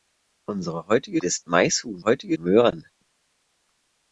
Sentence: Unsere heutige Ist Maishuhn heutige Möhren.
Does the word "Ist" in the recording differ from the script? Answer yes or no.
no